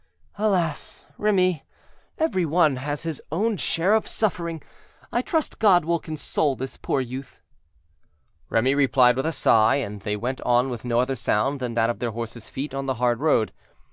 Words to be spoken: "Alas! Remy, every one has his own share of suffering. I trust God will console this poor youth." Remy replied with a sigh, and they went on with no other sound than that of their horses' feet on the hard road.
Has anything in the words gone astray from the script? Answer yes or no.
no